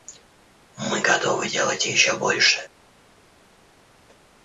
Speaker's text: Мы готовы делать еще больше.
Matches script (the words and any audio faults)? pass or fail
pass